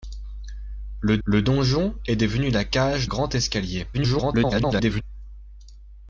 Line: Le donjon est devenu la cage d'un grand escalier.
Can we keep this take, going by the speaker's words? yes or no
no